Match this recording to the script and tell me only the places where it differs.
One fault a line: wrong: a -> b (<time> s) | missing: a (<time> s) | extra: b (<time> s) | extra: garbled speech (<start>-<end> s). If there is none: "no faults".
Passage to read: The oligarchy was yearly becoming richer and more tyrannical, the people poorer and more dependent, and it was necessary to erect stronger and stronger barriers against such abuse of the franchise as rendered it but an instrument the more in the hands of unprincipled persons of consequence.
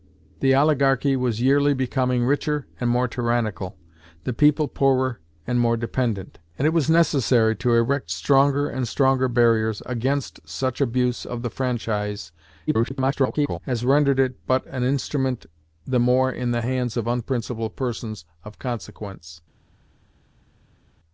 extra: garbled speech (12.7-13.6 s)